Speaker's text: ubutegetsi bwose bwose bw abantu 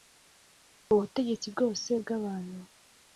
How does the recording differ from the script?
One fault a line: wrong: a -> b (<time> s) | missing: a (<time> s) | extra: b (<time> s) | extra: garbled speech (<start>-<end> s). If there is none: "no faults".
missing: bwose (1.9 s)